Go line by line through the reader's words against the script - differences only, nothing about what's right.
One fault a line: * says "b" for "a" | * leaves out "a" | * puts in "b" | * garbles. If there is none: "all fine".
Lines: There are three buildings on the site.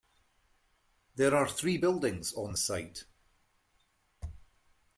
all fine